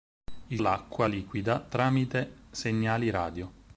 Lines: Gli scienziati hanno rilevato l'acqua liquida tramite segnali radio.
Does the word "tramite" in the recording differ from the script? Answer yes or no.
no